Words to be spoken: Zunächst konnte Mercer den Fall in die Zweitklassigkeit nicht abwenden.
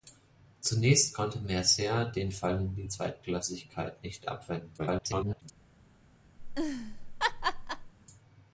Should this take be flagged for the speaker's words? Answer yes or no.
yes